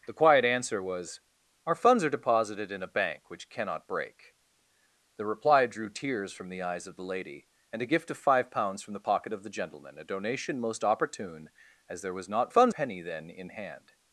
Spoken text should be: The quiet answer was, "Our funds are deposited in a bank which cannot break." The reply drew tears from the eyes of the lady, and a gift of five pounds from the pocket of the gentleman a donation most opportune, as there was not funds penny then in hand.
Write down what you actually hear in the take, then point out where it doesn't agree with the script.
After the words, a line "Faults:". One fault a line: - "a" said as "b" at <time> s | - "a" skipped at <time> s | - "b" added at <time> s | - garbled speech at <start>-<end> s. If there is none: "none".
The quiet answer was, "Our funds are deposited in a bank which cannot break." The reply drew tears from the eyes of the lady, and a gift of five pounds from the pocket of the gentleman a donation most opportune, as there was not funds penny then in hand.
Faults:
none